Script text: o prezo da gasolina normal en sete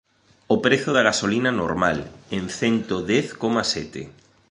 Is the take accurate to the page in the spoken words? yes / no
no